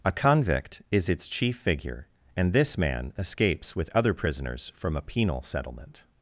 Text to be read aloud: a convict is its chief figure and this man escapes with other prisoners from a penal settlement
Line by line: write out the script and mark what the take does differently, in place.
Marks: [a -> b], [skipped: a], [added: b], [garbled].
a convict is its chief figure and this man escapes with other prisoners from a penal settlement